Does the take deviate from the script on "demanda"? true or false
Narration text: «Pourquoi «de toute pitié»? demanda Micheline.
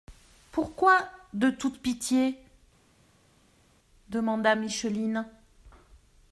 false